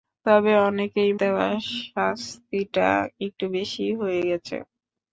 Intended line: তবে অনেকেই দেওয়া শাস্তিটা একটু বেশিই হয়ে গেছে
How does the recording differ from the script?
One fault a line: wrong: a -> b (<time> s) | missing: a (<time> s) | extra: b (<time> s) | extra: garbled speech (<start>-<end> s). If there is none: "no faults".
no faults